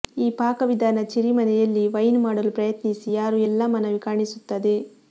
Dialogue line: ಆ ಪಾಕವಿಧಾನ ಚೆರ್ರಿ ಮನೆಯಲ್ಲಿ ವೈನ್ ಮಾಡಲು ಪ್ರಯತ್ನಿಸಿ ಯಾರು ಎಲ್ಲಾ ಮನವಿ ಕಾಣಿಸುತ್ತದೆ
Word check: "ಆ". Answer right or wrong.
wrong